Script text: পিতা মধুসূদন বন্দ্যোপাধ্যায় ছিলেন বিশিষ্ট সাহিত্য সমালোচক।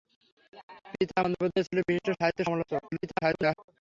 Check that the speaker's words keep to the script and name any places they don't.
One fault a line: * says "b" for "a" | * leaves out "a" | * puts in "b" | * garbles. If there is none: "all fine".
* leaves out "মধুসূদন"
* garbles